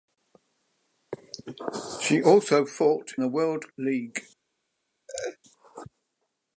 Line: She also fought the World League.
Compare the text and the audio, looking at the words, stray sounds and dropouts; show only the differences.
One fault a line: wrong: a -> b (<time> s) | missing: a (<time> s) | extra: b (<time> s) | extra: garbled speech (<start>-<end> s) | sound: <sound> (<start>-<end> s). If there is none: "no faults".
sound: laugh (5.1-5.4 s)